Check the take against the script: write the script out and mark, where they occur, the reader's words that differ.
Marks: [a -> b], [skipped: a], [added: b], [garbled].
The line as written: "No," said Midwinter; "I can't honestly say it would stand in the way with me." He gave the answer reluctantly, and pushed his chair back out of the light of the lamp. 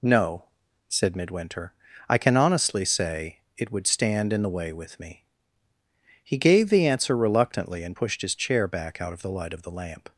"No," said Midwinter; "I [can't -> can] honestly say it would stand in the way with me." He gave the answer reluctantly, and pushed his chair back out of the light of the lamp.